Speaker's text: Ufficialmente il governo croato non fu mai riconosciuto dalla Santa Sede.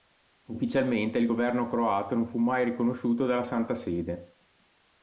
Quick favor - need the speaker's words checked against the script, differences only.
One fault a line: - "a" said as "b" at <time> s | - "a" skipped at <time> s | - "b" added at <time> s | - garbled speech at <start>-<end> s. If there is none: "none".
none